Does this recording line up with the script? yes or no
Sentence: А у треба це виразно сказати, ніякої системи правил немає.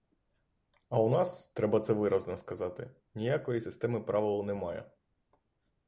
no